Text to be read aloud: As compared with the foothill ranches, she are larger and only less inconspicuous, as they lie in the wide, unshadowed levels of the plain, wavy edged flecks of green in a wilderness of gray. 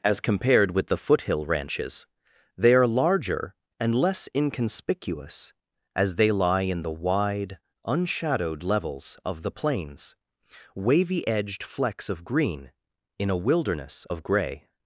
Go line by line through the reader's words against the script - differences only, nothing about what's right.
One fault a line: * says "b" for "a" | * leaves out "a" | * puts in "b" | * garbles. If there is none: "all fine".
* says "they" for "she"
* leaves out "only"
* says "plains" for "plain"